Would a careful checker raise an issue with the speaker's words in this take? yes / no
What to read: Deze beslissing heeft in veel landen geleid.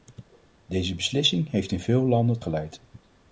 no